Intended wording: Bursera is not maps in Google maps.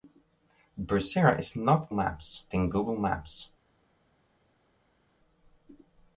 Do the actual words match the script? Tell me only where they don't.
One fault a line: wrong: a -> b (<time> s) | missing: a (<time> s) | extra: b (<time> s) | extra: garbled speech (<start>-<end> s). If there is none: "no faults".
no faults